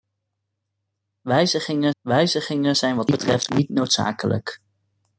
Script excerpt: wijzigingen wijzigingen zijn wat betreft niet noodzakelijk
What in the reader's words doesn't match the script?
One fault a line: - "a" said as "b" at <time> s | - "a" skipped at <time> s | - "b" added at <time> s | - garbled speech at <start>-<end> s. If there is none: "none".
none